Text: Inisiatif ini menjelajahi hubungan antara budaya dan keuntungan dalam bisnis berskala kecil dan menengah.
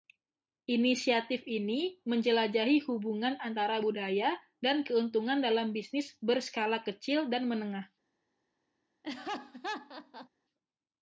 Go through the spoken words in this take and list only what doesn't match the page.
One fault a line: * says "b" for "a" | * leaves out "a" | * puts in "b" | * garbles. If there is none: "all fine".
all fine